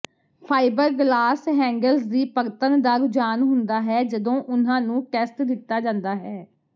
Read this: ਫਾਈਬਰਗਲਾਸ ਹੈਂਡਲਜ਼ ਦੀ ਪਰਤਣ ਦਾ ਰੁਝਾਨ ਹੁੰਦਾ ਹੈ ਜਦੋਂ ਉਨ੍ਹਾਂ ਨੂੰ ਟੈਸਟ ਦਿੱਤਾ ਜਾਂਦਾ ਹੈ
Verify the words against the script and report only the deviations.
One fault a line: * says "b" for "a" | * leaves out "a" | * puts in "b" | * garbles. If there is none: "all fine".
all fine